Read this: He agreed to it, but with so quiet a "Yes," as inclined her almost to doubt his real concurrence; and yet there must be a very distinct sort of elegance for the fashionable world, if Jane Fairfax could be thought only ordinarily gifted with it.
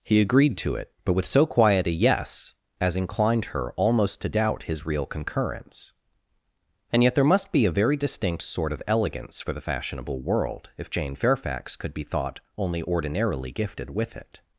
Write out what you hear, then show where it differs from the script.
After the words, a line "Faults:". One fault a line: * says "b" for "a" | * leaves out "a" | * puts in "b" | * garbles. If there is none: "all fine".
He agreed to it, but with so quiet a "Yes," as inclined her almost to doubt his real concurrence; and yet there must be a very distinct sort of elegance for the fashionable world, if Jane Fairfax could be thought only ordinarily gifted with it.
Faults:
all fine